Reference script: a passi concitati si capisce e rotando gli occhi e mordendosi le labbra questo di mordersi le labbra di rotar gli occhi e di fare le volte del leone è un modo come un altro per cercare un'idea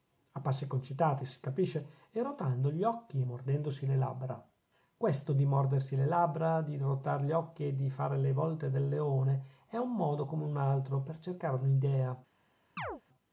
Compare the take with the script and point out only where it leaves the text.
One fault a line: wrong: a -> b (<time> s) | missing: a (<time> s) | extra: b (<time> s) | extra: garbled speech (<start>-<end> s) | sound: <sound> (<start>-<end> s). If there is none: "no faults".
sound: chirp (12.8-13.0 s)